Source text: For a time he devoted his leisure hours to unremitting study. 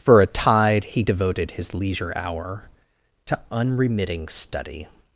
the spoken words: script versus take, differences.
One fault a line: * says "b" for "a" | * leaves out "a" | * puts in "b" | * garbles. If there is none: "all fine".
* says "tide" for "time"
* says "hour" for "hours"